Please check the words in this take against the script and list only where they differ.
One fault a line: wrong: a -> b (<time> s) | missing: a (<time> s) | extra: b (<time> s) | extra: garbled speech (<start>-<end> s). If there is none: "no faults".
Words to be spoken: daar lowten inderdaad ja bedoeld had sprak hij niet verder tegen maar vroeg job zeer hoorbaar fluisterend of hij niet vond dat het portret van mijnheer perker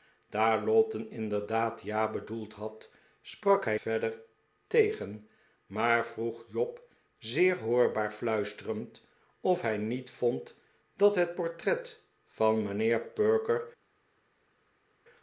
missing: niet (3.8 s)